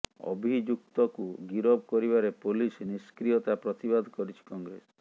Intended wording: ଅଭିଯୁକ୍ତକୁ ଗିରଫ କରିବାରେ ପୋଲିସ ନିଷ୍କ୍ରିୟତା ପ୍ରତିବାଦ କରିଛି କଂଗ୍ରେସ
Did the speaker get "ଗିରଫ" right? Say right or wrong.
right